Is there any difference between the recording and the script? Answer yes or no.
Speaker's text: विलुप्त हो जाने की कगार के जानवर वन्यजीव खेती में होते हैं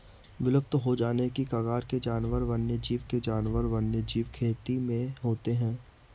yes